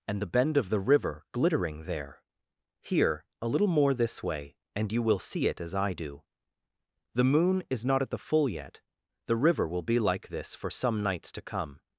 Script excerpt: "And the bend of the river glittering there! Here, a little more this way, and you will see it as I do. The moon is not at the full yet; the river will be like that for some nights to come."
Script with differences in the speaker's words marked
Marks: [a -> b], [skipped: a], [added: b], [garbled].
"And the bend of the river glittering there! Here, a little more this way, and you will see it as I do. The moon is not at the full yet; the river will be like [that -> this] for some nights to come."